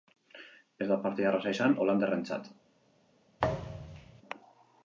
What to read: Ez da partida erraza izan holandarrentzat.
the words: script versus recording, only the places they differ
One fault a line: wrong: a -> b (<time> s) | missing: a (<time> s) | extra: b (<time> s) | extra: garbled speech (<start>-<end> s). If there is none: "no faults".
no faults